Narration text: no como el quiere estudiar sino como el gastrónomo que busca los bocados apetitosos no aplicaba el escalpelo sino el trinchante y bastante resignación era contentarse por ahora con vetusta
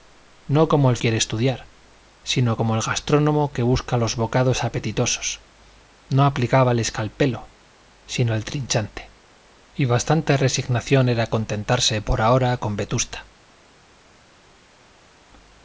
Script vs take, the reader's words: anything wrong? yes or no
no